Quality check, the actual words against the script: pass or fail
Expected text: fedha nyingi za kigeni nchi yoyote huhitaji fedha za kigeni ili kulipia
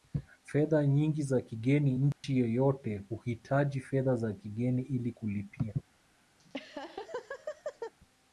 pass